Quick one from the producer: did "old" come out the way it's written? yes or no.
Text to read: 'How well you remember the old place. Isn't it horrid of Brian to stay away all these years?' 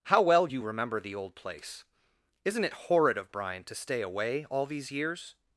yes